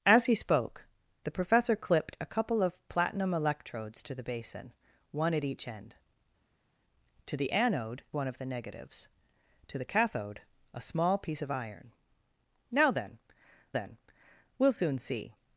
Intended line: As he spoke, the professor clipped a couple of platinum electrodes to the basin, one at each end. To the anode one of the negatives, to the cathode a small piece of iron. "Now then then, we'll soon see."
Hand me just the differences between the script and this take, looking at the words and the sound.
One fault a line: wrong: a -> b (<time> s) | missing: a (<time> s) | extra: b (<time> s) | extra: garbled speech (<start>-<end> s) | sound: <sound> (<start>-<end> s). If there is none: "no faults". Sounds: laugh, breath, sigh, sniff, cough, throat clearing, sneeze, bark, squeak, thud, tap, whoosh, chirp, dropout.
no faults